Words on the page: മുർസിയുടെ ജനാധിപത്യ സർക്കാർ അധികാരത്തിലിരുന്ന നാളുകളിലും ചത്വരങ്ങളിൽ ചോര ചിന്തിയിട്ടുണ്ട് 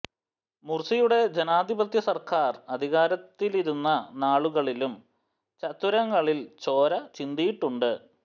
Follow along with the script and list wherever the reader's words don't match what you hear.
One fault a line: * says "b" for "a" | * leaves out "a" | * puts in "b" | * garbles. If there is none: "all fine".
all fine